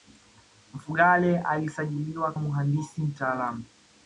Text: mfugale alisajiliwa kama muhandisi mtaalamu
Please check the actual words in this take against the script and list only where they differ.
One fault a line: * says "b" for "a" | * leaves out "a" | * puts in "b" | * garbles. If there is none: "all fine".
* leaves out "kama"